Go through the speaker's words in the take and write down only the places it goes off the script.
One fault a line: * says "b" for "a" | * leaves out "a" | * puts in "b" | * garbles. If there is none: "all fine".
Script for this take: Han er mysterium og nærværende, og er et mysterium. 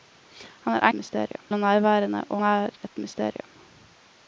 all fine